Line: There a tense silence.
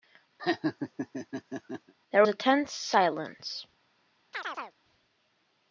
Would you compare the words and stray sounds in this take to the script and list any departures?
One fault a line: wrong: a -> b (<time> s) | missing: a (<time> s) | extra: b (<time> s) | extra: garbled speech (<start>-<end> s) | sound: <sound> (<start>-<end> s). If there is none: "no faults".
sound: laugh (0.4-1.9 s)
sound: chirp (4.3-4.8 s)